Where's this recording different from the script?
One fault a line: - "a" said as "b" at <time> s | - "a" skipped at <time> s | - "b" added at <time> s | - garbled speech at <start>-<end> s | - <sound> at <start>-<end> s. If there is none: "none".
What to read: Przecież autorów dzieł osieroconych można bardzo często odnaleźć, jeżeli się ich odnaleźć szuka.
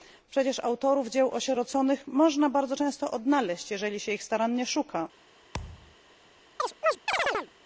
- "odnaleźć" said as "starannie" at 4.2 s
- thud at 5.5-6.0 s
- chirp at 6.6-7.5 s